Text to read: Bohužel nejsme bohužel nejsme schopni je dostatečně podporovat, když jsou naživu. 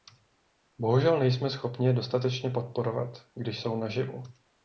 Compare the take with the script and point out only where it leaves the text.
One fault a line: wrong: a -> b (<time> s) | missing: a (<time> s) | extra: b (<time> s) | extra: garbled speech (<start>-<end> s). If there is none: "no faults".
missing: bohužel nejsme (1.5 s)